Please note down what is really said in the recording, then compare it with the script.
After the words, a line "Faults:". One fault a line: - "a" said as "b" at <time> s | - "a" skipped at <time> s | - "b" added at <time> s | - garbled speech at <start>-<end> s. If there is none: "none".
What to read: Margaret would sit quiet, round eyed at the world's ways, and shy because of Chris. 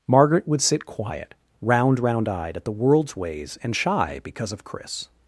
Margaret would sit quiet, round round eyed at the world's ways, and shy because of Chris.
Faults:
- "round" added at 2.0 s